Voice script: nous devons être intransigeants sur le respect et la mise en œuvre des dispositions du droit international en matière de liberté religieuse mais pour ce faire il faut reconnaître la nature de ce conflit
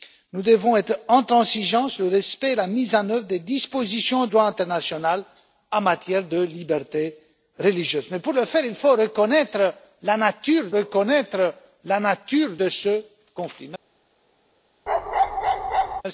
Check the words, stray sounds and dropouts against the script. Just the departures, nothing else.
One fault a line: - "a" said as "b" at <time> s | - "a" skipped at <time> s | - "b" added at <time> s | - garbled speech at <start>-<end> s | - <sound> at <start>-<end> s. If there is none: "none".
- "du" skipped at 4.3 s
- "reconnaître la nature" added at 10.7 s
- bark at 14.9-16.0 s